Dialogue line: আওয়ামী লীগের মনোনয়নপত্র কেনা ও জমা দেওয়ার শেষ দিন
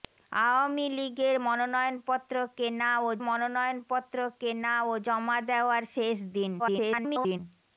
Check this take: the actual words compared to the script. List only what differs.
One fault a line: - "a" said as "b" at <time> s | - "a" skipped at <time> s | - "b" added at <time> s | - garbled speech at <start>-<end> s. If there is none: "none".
- "মনোনয়নপত্র কেনা ও" added at 3.3 s
- garbled speech at 6.6-7.4 s